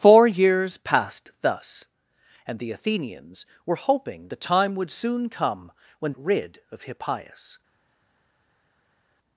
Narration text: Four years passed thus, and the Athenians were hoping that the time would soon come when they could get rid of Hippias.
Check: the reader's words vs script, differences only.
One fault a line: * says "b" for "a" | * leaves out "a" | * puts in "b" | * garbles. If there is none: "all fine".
* leaves out "that"
* leaves out "they could get"